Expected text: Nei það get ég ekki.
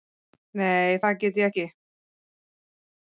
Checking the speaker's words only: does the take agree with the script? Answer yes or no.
yes